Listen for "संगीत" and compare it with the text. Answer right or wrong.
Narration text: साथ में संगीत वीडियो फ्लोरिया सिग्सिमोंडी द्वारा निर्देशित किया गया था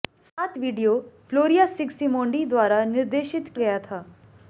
wrong